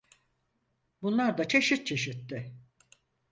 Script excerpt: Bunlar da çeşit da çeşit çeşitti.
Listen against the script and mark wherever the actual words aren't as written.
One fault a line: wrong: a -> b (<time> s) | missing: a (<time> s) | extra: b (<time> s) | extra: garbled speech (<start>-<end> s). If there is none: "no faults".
missing: da çeşit (1.9 s)